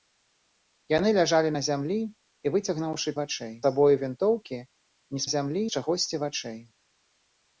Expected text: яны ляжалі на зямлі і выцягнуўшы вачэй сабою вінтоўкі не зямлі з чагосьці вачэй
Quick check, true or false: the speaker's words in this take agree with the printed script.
true